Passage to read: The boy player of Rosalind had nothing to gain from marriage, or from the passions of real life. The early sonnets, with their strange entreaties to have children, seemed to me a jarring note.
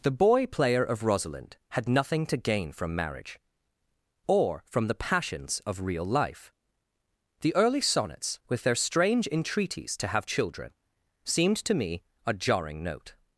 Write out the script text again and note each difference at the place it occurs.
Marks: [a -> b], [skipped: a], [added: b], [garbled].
The boy player of Rosalind had nothing to gain from marriage, or from the passions of real life. The early sonnets, with their strange entreaties to have children, seemed to me a jarring note.